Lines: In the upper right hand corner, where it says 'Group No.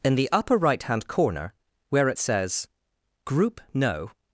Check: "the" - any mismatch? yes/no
no